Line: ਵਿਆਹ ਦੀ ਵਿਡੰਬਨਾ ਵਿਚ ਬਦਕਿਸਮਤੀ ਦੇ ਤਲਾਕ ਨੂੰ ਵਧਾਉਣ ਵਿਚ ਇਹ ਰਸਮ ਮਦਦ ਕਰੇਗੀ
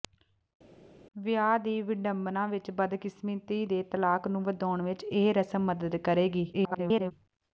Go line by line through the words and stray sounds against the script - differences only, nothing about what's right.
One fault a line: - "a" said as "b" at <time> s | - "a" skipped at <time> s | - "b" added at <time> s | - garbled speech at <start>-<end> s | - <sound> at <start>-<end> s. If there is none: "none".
- garbled speech at 6.5-7.1 s